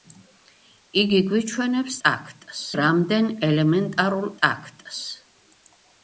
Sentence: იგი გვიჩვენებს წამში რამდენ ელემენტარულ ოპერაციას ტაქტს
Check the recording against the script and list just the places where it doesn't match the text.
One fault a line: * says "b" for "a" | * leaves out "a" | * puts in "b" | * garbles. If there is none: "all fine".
* says "ტაქტს" for "წამში"
* leaves out "ოპერაციას"